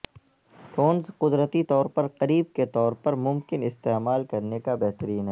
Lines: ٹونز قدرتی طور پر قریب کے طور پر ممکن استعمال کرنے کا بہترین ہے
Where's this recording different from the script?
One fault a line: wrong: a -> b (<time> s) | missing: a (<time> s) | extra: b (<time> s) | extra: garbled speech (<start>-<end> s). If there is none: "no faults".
no faults